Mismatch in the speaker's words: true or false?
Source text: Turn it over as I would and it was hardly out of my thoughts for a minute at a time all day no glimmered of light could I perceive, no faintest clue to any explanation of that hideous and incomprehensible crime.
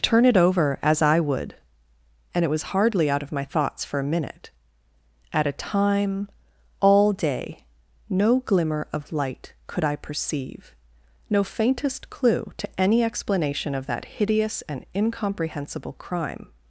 true